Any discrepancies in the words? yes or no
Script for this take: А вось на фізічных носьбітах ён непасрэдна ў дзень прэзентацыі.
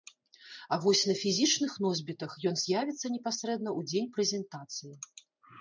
yes